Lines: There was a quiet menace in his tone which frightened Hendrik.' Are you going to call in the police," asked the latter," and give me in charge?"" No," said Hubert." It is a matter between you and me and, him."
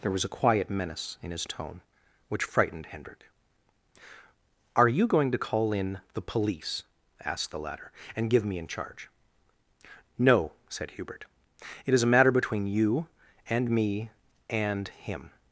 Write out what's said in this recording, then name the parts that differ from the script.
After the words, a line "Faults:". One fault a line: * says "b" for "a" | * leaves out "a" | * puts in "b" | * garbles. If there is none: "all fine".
There was a quiet menace in his tone which frightened Hendrik.' Are you going to call in the police," asked the latter," and give me in charge?"" No," said Hubert." It is a matter between you and me and, him."
Faults:
all fine